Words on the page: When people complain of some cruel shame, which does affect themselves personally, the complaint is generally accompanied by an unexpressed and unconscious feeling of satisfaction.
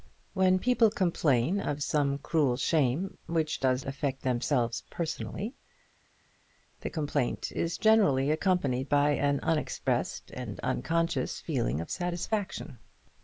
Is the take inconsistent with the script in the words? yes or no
no